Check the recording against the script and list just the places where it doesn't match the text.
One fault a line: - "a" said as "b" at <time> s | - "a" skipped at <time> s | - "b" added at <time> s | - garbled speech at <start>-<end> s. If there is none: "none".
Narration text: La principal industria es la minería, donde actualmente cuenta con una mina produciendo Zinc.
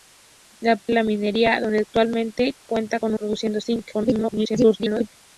- "principal industria" skipped at 0.8 s
- "una mina" skipped at 3.1 s
- garbled speech at 3.9-5.1 s